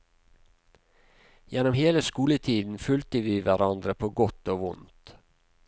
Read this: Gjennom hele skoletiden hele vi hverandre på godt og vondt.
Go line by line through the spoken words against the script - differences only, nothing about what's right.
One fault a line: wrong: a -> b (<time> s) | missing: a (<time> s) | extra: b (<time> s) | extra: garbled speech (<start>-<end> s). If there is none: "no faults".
wrong: hele -> fulgte (2.8 s)